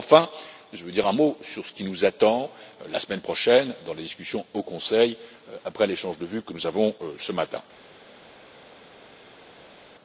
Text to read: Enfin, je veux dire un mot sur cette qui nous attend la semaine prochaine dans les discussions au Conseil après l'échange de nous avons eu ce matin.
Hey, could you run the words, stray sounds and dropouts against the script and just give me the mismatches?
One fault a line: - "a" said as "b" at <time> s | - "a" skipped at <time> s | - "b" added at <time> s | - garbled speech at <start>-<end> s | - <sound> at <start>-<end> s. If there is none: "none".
- "cette" said as "ce" at 1.6 s
- "vues que" added at 6.2 s